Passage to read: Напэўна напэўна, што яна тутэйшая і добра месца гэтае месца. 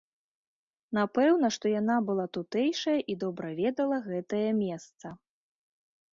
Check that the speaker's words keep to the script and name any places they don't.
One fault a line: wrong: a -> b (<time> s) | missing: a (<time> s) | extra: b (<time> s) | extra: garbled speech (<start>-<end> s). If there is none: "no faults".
missing: напэўна (1.5 s)
extra: была (2.1 s)
wrong: месца -> ведала (3.6 s)